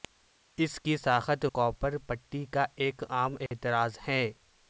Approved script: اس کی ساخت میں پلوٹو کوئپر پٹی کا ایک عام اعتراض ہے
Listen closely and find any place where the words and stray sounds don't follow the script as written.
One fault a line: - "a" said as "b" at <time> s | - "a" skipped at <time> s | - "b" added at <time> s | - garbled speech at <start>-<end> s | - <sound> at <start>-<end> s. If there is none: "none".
- "میں پلوٹو" skipped at 1.4 s
- dropout at 3.5-3.5 s